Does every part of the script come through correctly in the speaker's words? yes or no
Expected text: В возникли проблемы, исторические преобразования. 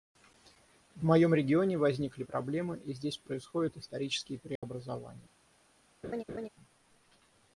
no